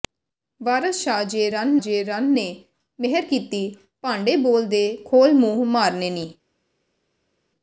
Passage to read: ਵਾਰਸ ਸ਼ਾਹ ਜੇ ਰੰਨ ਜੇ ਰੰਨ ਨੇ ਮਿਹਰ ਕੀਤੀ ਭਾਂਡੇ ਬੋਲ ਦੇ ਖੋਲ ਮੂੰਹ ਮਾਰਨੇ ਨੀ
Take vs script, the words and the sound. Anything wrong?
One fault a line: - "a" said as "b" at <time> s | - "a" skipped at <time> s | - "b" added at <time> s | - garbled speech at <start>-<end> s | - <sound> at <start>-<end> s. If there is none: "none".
none